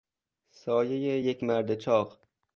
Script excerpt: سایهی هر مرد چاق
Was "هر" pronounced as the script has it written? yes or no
no